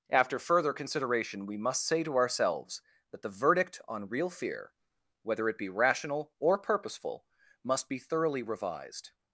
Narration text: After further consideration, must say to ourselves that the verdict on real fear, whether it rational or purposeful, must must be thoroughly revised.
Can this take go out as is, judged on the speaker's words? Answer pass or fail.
fail